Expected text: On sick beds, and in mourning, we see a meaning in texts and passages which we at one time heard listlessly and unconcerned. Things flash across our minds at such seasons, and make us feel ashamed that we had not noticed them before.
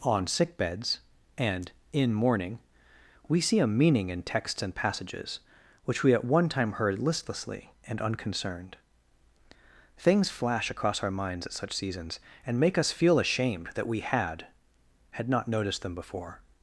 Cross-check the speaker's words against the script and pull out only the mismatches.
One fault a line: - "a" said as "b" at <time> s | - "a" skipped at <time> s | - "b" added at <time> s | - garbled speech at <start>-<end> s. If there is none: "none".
- "had" added at 15.1 s